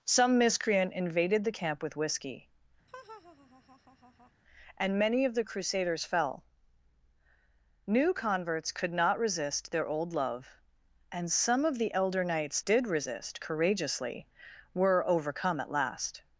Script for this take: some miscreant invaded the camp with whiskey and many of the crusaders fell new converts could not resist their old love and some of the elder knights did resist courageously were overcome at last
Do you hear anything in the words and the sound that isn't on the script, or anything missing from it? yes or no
yes